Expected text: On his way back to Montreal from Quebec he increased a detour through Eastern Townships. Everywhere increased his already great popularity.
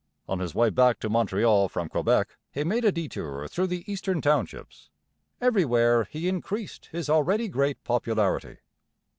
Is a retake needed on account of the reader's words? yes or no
yes